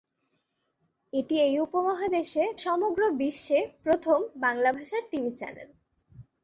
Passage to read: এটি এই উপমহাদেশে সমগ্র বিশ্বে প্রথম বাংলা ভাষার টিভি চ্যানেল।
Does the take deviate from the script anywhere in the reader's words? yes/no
no